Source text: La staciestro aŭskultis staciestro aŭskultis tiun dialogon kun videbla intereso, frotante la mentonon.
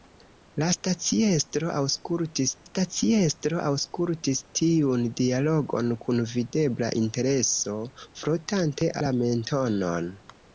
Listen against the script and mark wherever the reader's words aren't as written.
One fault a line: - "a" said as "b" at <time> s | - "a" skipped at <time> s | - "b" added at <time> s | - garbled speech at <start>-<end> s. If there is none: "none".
none